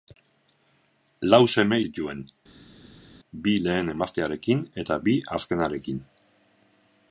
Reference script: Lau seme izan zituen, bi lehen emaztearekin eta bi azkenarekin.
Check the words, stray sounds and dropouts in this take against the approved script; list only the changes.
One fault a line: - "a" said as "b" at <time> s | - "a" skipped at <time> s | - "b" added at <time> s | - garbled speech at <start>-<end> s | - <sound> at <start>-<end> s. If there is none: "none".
- "izan" skipped at 1.8 s